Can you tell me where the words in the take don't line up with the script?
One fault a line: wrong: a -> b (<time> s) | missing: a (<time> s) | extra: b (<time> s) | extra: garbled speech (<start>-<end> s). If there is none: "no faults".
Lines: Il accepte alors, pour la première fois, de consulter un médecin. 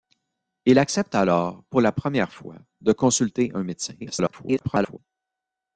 extra: garbled speech (4.0-5.0 s)